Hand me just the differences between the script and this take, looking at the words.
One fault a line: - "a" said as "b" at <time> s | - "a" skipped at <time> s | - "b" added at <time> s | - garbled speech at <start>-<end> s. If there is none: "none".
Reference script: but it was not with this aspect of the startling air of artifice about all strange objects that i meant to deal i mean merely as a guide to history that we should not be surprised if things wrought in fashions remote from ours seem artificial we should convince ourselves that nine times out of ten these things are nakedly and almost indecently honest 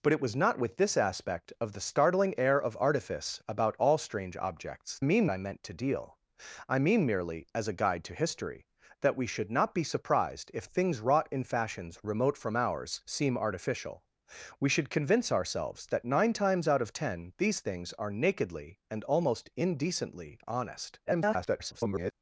- "that" said as "mean" at 5.0 s
- garbled speech at 21.1-22.1 s